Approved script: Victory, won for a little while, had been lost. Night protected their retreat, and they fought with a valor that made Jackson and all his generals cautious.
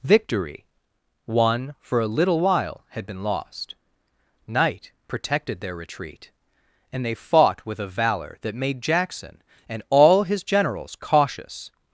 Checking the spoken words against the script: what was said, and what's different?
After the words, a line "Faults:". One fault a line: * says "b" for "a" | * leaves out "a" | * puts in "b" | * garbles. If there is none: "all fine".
Victory, won for a little while, had been lost. Night protected their retreat, and they fought with a valor that made Jackson and all his generals cautious.
Faults:
all fine